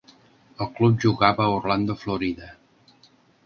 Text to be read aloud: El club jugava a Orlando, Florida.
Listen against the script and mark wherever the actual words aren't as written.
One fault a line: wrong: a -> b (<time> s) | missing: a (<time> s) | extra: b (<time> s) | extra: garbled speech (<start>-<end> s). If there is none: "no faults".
no faults